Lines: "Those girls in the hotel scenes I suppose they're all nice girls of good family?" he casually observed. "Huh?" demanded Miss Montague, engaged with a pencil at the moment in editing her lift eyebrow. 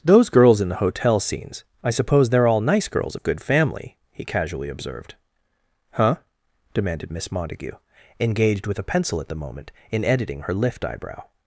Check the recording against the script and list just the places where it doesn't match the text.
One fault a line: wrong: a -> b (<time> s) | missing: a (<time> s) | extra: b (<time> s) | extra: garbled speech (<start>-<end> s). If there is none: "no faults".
no faults